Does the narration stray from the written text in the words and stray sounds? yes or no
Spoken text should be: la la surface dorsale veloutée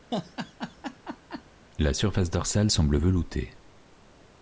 yes